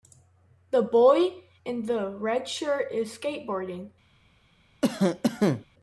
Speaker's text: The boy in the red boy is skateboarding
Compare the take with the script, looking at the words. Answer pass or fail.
fail